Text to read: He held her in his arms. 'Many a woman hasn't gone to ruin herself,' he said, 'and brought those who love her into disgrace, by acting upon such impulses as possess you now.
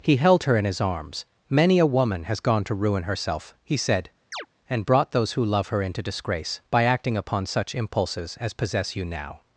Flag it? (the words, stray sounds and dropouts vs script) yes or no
yes